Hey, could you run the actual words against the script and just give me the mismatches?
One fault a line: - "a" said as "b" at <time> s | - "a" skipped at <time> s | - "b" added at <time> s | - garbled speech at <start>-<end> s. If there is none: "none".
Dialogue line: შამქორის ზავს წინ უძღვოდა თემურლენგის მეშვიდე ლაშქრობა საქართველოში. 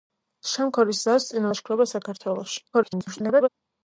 - "უძღვოდა თემურლენგის მეშვიდე" skipped at 1.4 s
- garbled speech at 2.7-3.5 s